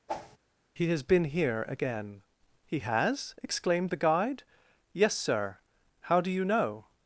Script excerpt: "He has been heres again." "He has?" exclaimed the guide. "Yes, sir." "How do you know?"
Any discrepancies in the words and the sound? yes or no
yes